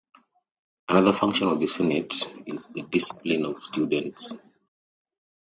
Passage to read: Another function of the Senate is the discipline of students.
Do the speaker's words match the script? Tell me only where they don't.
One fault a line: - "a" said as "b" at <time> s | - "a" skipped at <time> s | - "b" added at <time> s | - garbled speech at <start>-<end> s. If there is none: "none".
none